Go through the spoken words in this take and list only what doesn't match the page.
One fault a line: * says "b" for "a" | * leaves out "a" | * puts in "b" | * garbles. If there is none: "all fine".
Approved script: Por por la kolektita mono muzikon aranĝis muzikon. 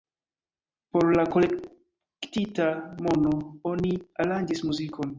* leaves out "por"
* says "oni" for "muzikon"